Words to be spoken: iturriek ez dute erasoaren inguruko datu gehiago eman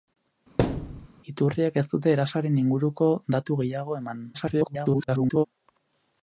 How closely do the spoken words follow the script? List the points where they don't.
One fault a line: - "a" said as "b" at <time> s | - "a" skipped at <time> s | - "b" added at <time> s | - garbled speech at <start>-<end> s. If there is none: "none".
- garbled speech at 4.3-5.5 s